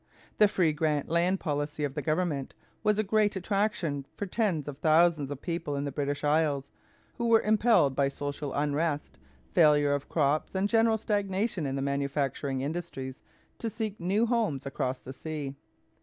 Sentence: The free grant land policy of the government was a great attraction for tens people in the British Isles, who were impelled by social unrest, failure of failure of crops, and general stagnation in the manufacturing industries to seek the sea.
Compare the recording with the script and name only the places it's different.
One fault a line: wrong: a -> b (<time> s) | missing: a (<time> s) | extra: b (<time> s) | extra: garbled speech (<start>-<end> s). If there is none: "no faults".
extra: of thousands of (4.7 s)
missing: failure of (10.1 s)
extra: new homes across (14.0 s)